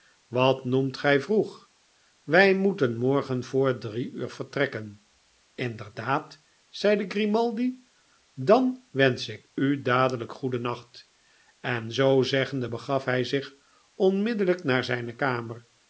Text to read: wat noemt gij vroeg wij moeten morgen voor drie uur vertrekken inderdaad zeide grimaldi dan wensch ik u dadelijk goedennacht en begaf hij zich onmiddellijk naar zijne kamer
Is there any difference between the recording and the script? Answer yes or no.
yes